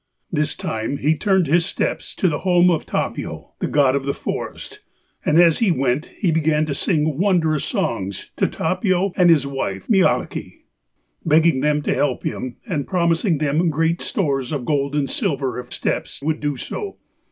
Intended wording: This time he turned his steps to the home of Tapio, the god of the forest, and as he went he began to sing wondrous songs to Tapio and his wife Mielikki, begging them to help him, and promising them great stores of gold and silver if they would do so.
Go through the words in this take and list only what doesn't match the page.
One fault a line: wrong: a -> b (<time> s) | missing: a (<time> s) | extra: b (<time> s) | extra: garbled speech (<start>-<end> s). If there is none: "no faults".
wrong: they -> steps (15.7 s)